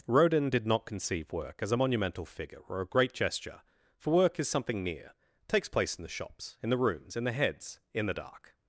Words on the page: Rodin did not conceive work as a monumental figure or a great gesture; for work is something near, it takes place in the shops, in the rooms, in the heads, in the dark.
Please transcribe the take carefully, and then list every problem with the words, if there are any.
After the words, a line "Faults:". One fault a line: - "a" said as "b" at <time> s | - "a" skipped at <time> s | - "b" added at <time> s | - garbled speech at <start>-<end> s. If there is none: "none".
Rodin did not conceive work as a monumental figure or a great gesture; for work is something near, takes place in the shops, in the rooms, in the heads, in the dark.
Faults:
- "it" skipped at 5.1 s